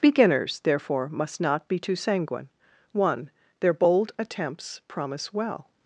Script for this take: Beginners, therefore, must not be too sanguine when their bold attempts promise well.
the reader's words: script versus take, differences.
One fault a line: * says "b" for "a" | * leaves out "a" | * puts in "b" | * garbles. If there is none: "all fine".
* says "one" for "when"